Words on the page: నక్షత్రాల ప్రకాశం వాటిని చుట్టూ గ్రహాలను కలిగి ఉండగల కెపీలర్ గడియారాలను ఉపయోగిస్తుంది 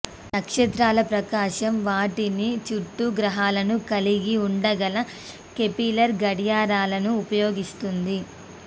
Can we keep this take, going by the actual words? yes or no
yes